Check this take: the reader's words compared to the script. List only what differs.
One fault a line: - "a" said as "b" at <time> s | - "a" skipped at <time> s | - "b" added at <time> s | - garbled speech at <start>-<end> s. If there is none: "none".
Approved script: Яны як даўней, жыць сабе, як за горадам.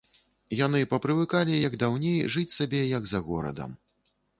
- "папрывыкалі" added at 0.9 s